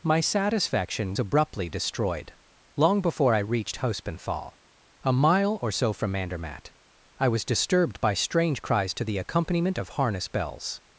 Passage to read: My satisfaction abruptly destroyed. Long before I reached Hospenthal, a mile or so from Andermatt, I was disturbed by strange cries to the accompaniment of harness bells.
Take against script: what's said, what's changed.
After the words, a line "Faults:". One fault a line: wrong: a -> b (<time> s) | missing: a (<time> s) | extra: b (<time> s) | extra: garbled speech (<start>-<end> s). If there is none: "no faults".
My satisfaction abruptly destroyed. Long before I reached Hospenthal, a mile or so from Andermatt, I was disturbed by strange cries to the accompaniment of harness bells.
Faults:
no faults